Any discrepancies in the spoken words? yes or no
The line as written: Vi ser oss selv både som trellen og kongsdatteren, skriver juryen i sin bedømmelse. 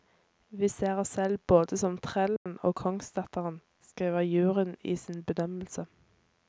no